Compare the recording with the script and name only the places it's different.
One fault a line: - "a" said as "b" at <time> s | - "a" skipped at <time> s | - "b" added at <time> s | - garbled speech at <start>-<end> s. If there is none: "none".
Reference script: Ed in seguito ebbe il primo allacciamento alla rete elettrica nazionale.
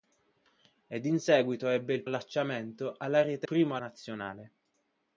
- "primo" skipped at 2.0 s
- "elettrica" said as "primo" at 3.4 s